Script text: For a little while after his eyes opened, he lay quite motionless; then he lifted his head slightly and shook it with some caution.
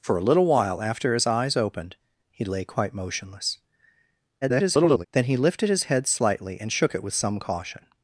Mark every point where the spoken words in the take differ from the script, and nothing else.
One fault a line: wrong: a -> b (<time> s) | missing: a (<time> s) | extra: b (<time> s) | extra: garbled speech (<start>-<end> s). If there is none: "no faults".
extra: garbled speech (4.4-5.1 s)